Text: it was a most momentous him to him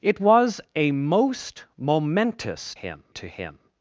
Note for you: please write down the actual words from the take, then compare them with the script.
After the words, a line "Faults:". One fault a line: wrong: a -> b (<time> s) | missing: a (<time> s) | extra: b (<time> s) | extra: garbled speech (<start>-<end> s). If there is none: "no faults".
it was a most momentous him to him
Faults:
no faults